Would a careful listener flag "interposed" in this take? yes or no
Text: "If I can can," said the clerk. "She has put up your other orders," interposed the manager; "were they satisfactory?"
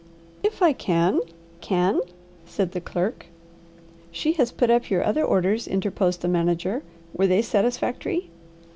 no